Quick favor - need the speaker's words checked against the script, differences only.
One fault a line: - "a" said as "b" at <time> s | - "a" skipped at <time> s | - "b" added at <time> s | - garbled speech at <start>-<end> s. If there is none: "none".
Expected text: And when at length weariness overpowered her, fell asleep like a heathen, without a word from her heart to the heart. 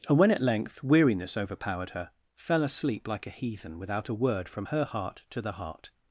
none